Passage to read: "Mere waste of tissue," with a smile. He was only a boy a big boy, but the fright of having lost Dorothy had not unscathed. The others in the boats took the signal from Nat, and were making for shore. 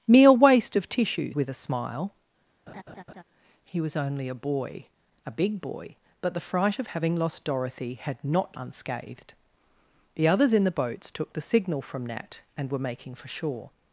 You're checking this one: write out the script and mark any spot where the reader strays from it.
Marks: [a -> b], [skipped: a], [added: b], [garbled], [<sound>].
"Mere waste of tissue," with a smile. [laugh] He was only a boy a big boy, but the fright of having lost Dorothy had not unscathed. The others in the boats took the signal from Nat, and were making for shore.